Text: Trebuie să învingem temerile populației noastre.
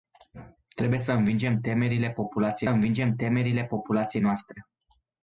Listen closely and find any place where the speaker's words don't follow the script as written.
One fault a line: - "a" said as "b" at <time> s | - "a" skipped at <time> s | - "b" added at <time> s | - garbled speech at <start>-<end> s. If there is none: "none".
- "învingem temerile populației" added at 2.7 s